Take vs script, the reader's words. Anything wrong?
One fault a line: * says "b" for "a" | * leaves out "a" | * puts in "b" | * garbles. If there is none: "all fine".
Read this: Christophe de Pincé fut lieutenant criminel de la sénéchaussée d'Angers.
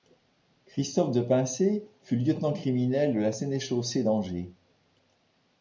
all fine